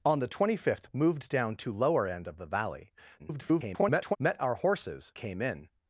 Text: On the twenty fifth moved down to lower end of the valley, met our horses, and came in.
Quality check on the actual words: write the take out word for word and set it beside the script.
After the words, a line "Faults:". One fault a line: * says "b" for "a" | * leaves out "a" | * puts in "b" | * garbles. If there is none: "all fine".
On the twenty fifth moved down to lower end of the valley, [garbled] met our horses, came in.
Faults:
* garbles
* leaves out "and"